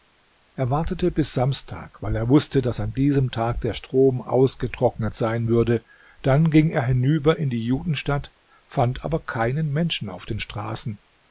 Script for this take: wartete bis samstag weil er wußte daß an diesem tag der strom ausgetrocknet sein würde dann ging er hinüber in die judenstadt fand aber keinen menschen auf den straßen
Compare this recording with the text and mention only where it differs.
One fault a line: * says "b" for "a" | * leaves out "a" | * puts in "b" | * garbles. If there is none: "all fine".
all fine